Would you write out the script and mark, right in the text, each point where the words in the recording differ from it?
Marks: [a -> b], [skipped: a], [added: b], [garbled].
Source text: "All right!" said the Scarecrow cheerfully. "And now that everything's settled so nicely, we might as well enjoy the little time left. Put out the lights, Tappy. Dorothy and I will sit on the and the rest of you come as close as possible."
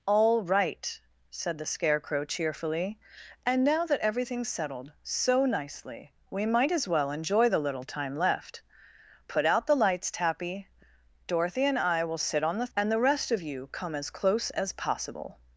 "All right!" said the Scarecrow cheerfully. "And now that everything's settled so nicely, we might as well enjoy the little time left. Put out the lights, Tappy. Dorothy and I will sit on the and the rest of you come as close as possible."